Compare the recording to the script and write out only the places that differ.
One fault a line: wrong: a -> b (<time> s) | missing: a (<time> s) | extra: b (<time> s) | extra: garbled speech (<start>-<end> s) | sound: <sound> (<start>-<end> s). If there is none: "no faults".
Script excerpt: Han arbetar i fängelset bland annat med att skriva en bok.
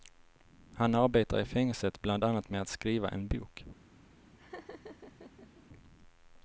sound: laugh (4.4-5.6 s)